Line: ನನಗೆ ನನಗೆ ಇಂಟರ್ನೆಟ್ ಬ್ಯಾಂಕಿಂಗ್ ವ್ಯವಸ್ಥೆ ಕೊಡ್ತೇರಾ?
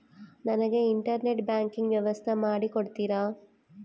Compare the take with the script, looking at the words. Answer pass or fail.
fail